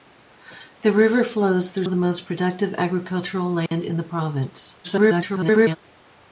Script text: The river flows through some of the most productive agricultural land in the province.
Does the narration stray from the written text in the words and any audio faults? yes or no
yes